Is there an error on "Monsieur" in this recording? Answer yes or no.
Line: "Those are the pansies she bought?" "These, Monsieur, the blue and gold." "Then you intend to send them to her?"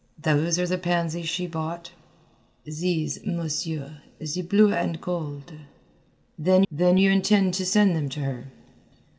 no